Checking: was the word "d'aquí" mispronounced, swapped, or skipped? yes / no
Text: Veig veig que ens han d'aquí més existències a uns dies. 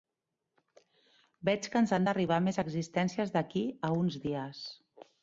yes